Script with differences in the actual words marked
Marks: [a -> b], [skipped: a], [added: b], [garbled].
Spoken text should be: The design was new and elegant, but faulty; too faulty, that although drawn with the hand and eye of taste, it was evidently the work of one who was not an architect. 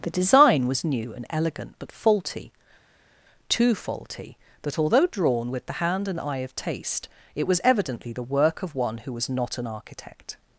The design was new and elegant, but faulty; too faulty, that although drawn with the hand and eye of taste, it was evidently the work of one who was not an architect.